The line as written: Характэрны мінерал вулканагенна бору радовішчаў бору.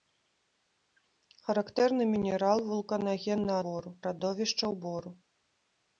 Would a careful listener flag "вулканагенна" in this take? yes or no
no